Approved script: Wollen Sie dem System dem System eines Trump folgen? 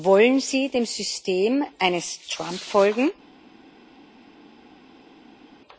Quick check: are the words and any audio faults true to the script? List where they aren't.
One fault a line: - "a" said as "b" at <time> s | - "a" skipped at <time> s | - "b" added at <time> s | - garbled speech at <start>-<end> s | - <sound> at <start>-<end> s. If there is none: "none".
- "dem System" skipped at 1.6 s